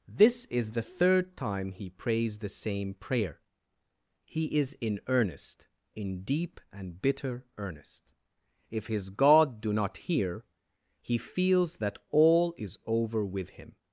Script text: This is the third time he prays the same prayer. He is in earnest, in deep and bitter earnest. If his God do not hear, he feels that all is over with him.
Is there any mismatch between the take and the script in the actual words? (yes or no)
no